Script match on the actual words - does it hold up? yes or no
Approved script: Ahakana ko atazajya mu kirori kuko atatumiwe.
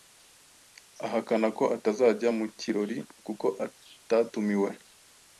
yes